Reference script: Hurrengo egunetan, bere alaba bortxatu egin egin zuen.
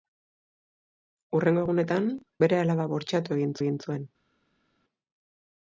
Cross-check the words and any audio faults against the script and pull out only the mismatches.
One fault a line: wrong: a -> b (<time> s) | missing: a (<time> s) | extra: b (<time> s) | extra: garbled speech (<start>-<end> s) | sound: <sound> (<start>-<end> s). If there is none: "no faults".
no faults